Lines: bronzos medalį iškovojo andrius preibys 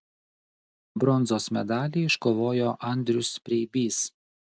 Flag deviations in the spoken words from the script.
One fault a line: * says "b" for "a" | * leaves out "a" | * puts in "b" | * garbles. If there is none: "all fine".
all fine